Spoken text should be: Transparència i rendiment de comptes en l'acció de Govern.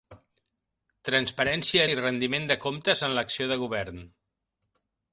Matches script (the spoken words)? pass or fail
pass